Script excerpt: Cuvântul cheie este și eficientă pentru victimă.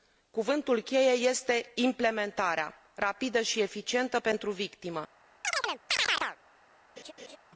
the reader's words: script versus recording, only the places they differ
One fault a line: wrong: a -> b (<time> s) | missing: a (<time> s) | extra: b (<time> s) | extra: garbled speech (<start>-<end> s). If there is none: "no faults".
extra: implementarea rapidă (1.8 s)